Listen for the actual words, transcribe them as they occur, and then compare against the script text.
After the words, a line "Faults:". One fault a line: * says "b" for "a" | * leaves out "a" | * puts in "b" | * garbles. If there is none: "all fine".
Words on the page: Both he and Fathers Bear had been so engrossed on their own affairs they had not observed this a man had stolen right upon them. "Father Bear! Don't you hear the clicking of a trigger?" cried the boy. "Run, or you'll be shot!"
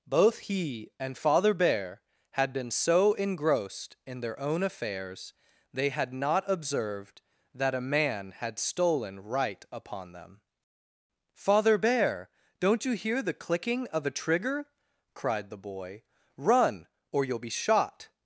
Both he and Father Bear had been so engrossed in their own affairs they had not observed that a man had stolen right upon them. "Father Bear! Don't you hear the clicking of a trigger?" cried the boy. "Run, or you'll be shot!"
Faults:
* says "Father" for "Fathers"
* says "in" for "on"
* says "that" for "this"